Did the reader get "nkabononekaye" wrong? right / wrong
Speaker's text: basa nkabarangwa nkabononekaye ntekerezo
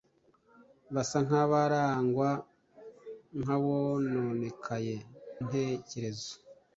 right